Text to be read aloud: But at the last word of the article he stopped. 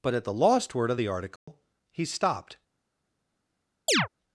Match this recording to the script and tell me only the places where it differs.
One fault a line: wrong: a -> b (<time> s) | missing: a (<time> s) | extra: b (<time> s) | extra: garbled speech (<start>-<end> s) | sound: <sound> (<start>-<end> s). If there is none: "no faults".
wrong: last -> lost (0.3 s)
sound: dropout (1.4-1.5 s)
sound: chirp (3.9-4.1 s)